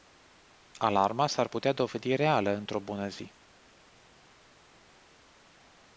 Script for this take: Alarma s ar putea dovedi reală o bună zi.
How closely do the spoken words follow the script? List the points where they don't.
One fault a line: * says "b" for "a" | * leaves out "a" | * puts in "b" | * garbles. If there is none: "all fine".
* puts in "într"